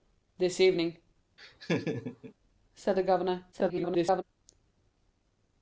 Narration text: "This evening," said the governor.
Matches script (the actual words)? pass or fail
fail